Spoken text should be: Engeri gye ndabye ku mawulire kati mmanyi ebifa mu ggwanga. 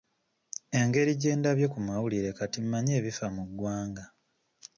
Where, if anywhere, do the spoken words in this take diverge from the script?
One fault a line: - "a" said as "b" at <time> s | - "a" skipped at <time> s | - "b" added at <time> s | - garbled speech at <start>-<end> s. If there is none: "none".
none